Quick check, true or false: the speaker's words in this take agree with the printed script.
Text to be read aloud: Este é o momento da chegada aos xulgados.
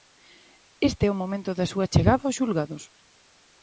false